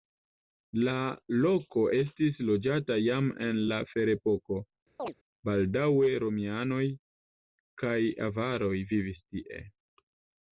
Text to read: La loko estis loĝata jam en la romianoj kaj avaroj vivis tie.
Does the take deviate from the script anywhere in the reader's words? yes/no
yes